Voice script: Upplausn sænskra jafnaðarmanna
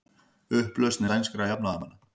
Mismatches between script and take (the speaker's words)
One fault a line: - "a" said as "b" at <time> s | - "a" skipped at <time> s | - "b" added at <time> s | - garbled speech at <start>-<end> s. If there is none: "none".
none